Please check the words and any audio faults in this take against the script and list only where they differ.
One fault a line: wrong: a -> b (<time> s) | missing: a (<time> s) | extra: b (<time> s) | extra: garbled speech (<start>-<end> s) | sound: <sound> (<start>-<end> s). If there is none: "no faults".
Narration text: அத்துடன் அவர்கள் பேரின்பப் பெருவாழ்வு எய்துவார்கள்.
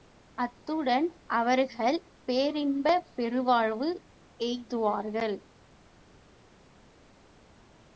no faults